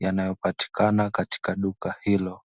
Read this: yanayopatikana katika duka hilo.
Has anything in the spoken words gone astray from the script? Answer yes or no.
no